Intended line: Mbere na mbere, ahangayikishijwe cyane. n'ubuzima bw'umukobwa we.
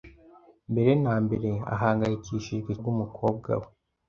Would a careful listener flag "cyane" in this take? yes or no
yes